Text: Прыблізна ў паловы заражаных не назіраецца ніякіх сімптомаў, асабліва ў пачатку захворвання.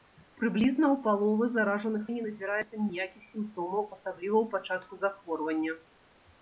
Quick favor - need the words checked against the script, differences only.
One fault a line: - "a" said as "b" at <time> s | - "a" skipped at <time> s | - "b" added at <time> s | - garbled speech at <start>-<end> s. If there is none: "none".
none